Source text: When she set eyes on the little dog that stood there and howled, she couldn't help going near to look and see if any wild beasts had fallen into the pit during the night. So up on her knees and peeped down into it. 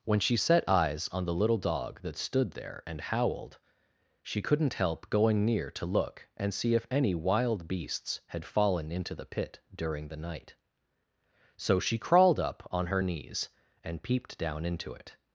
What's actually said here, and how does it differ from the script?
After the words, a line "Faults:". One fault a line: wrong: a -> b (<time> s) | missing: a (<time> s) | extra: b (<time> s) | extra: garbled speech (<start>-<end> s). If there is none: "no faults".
When she set eyes on the little dog that stood there and howled, she couldn't help going near to look and see if any wild beasts had fallen into the pit during the night. So she crawled up on her knees and peeped down into it.
Faults:
extra: she crawled (11.8 s)